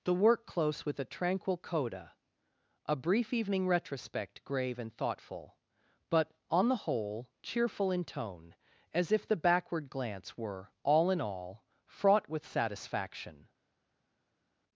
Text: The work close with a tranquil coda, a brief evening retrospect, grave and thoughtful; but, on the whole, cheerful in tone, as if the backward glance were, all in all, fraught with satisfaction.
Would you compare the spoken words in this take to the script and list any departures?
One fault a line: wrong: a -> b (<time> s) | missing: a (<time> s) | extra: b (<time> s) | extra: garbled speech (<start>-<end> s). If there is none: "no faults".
no faults